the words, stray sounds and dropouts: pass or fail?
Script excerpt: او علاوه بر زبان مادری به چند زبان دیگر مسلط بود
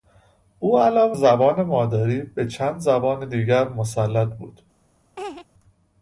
fail